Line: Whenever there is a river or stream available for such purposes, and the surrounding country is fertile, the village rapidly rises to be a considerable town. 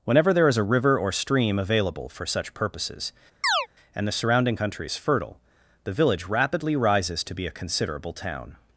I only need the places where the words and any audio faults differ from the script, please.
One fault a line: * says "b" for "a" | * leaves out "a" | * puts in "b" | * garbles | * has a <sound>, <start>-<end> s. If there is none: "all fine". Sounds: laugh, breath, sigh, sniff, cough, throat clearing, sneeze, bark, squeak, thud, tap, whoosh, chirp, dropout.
* has a chirp, 3.4-3.7 s